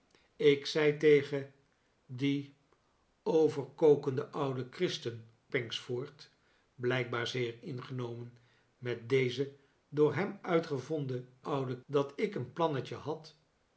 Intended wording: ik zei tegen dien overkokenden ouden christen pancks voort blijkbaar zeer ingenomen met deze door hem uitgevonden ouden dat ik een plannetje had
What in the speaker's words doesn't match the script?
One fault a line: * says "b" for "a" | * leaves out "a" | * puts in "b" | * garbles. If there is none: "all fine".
all fine